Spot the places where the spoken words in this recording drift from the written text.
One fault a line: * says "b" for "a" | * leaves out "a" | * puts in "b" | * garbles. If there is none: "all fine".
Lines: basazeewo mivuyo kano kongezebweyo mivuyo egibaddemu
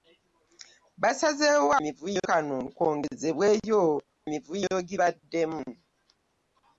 all fine